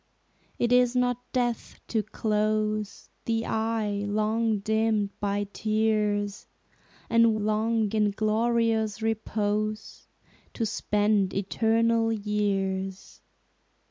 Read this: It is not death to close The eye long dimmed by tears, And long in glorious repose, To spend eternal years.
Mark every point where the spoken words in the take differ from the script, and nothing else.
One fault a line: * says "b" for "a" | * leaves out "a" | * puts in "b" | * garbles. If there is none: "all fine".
all fine